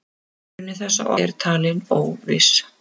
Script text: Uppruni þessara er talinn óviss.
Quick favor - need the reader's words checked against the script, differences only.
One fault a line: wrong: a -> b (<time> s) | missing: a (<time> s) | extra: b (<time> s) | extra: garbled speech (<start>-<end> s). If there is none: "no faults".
no faults